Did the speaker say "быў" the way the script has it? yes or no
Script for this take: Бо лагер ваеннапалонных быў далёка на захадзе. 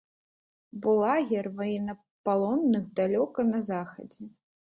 no